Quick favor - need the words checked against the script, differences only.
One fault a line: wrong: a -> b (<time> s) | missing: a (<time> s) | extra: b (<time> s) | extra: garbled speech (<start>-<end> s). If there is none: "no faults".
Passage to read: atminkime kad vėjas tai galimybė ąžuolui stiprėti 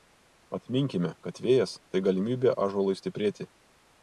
no faults